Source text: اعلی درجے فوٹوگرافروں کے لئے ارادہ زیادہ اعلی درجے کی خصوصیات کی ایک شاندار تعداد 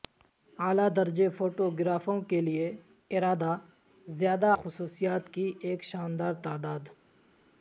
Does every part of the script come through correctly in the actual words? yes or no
no